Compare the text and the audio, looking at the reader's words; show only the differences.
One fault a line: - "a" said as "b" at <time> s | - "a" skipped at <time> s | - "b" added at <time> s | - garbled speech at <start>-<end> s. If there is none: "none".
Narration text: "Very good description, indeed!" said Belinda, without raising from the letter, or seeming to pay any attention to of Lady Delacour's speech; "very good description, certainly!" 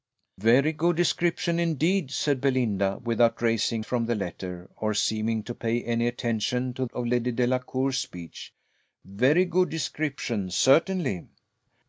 none